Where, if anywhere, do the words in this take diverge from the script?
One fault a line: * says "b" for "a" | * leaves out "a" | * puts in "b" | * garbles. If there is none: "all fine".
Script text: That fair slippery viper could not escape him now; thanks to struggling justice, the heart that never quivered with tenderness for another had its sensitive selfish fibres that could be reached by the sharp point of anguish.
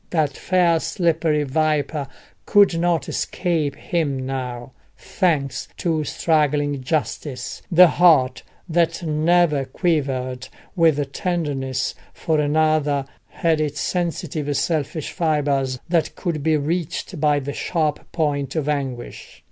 all fine